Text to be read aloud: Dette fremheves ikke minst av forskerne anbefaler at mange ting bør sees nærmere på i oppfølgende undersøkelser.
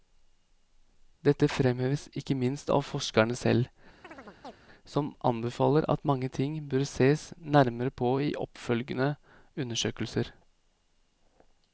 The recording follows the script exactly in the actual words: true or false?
false